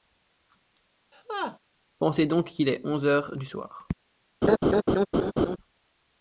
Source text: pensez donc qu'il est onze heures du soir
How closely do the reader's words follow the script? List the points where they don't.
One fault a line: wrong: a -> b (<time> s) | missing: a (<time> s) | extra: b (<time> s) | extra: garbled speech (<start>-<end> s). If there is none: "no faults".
no faults